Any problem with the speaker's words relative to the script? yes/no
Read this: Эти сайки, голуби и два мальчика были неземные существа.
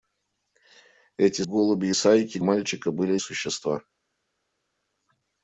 yes